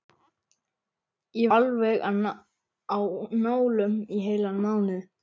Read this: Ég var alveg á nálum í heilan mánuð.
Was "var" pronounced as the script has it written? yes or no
no